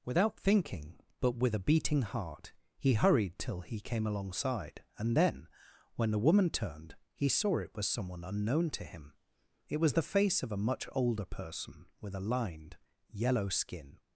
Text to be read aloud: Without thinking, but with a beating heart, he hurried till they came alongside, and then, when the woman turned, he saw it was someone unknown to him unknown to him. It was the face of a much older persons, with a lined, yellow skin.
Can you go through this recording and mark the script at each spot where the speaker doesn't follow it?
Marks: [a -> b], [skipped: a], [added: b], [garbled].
Without thinking, but with a beating heart, he hurried till [they -> he] came alongside, and then, when the woman turned, he saw it was someone unknown to him [skipped: unknown to him.] It was the face of a much older [persons, -> person] with a lined, yellow skin.